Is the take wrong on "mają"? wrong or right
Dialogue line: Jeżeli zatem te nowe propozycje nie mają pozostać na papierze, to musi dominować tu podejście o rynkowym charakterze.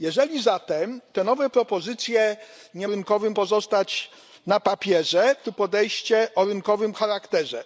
wrong